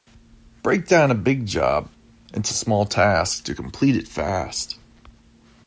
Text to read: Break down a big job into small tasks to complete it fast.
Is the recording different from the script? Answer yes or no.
no